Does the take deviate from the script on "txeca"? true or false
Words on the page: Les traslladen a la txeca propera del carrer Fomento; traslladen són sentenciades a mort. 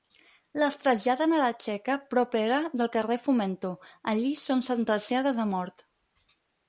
false